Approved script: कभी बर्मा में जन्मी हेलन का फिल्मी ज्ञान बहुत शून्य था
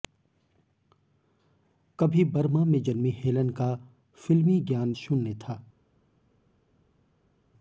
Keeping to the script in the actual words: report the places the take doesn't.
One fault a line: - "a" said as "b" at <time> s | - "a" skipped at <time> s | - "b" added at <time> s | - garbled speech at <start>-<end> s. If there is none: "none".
- "बहुत" skipped at 4.9 s